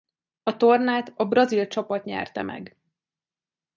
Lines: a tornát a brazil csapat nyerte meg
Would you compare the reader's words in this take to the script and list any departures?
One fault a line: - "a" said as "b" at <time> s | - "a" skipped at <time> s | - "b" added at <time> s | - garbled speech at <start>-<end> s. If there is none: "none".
none